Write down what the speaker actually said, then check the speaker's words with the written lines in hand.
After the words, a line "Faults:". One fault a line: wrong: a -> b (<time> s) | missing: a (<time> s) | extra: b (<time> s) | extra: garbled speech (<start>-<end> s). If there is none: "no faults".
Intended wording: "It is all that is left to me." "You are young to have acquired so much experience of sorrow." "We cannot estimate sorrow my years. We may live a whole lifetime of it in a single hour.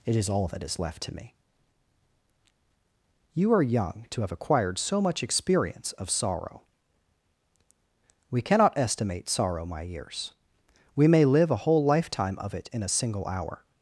"It is all that is left to me." "You are young to have acquired so much experience of sorrow." "We cannot estimate sorrow my years. We may live a whole lifetime of it in a single hour.
Faults:
no faults